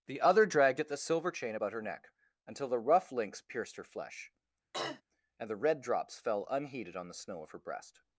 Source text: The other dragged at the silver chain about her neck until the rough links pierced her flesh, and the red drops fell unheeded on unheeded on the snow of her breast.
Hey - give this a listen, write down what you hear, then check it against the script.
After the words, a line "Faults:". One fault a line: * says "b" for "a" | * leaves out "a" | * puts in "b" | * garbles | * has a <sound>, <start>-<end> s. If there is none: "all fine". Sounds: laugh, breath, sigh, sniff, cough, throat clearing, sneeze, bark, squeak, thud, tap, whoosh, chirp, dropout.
The other dragged at the silver chain about her neck until the rough links pierced her flesh, and the red drops fell unheeded on the snow of her breast.
Faults:
* has a throat clearing, 4.7-5.0 s
* leaves out "unheeded on"